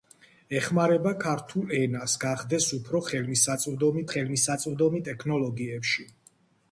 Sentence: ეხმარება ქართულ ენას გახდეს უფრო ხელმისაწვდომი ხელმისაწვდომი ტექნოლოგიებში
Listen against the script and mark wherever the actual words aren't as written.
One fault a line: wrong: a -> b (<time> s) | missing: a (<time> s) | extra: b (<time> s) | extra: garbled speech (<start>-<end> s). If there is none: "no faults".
no faults